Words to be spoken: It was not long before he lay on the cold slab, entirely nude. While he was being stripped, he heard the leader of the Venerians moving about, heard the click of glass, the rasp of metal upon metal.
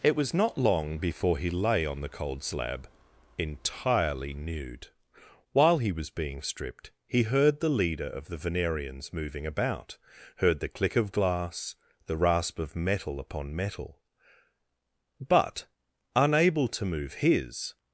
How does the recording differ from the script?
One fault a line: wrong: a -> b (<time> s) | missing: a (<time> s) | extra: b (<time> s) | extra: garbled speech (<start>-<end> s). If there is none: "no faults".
extra: But unable to move his (15.2 s)